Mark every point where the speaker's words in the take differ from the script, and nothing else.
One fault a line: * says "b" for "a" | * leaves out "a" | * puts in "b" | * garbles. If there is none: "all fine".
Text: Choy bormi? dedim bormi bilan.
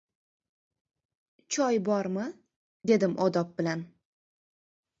* says "odob" for "bormi"